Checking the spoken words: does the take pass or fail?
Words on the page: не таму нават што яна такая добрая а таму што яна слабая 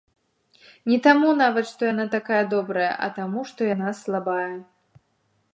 pass